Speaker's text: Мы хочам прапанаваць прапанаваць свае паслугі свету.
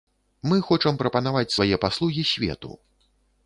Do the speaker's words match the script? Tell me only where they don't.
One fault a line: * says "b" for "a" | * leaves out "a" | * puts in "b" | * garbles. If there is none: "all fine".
* leaves out "прапанаваць"